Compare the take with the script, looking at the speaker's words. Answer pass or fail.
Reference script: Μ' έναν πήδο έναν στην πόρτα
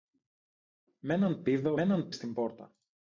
pass